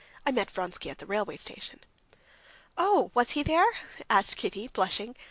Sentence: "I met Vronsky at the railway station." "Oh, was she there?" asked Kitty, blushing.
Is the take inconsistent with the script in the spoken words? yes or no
yes